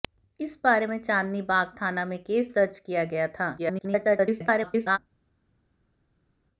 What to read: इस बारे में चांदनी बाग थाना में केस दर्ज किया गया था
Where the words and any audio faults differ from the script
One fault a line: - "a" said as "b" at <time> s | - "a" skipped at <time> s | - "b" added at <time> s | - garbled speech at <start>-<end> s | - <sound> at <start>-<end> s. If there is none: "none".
- garbled speech at 3.6-5.0 s